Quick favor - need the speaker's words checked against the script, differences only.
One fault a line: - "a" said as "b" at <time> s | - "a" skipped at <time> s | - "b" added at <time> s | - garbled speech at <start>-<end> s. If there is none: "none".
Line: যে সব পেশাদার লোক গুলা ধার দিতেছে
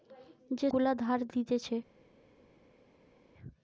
- "সব পেশাদার লোক" skipped at 0.7 s